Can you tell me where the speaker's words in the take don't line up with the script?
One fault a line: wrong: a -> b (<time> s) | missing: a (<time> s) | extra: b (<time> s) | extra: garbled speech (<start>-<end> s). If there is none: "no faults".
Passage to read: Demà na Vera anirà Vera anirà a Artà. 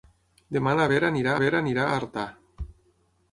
no faults